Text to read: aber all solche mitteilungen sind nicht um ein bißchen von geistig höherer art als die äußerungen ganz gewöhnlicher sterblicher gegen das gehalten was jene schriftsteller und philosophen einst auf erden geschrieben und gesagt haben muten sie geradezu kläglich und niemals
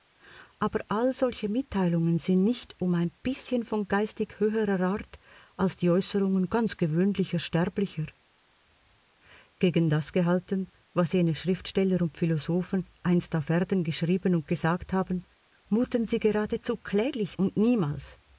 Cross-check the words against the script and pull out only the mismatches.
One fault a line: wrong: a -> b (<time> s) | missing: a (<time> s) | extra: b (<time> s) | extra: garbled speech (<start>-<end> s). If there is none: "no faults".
no faults